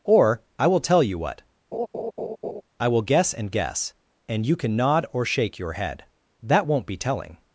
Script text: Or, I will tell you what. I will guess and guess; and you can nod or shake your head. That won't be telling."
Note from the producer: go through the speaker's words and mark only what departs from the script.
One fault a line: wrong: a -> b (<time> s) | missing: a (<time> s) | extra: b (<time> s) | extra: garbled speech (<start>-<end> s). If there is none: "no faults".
no faults